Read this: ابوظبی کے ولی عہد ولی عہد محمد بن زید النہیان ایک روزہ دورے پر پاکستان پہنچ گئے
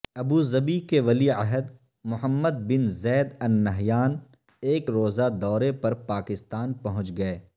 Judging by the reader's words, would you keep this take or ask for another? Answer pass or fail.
fail